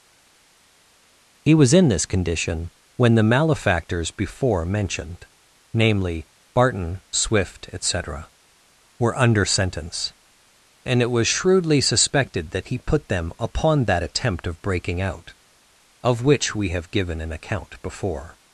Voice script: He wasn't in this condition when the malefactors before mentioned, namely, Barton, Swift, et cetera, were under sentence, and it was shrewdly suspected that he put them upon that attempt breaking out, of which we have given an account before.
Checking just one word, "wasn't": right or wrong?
wrong